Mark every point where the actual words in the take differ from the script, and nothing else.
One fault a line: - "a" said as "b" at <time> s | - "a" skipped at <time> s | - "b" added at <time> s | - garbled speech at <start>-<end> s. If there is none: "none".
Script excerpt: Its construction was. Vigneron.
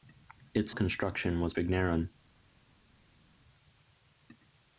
none